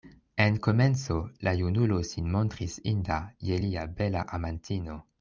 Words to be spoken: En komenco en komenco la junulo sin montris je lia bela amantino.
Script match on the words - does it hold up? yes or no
no